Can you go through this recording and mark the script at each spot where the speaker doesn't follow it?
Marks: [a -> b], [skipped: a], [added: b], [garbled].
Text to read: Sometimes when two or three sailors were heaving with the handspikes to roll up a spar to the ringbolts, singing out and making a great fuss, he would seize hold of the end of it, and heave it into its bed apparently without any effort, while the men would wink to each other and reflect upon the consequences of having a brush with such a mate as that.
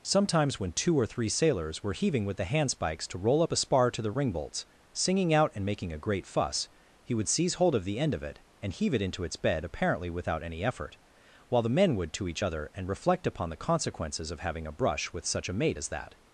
Sometimes when two or three sailors were heaving with the handspikes to roll up a spar to the ringbolts, singing out and making a great fuss, he would seize hold of the end of it, and heave it into its bed apparently without any effort, while the men would [skipped: wink] to each other and reflect upon the consequences of having a brush with such a mate as that.